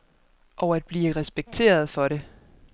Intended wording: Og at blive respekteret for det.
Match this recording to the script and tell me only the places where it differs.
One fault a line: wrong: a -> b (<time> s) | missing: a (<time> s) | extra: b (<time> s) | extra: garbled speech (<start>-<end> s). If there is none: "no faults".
no faults